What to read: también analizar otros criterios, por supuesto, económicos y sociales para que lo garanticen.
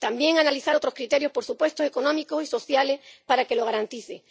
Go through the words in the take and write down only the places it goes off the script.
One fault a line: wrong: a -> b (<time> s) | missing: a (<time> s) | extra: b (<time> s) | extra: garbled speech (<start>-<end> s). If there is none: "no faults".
no faults